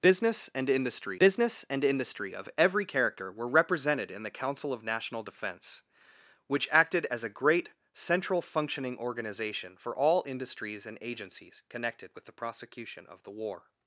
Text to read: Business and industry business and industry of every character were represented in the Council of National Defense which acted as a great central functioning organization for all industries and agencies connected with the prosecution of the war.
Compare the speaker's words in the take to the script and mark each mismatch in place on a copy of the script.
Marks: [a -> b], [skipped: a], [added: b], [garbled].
Business and industry business and industry of every character were represented in the Council of National Defense which acted as a great central functioning organization for all industries and agencies connected with the prosecution of the war.